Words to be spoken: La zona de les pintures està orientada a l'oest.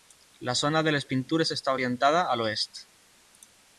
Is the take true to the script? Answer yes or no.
yes